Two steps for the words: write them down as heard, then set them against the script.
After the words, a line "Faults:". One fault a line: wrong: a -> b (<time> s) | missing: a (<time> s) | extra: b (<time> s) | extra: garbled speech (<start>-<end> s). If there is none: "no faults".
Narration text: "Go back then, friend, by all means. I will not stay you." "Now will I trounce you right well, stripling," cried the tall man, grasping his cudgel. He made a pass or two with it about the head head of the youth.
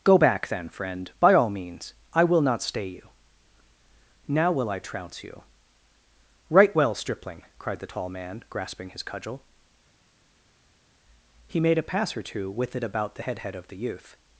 "Go back then, friend, by all means. I will not stay you." "Now will I trounce you right well, stripling," cried the tall man, grasping his cudgel. He made a pass or two with it about the head head of the youth.
Faults:
no faults